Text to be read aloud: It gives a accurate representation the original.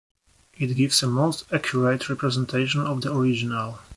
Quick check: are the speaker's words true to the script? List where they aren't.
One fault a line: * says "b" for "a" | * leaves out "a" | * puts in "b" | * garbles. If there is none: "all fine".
* puts in "most"
* puts in "of"